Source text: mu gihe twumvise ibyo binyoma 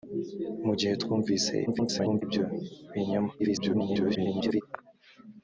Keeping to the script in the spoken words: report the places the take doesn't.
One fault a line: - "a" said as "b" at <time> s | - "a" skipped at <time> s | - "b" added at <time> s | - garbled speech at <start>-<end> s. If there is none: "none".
- garbled speech at 1.7-2.2 s
- garbled speech at 3.4-4.6 s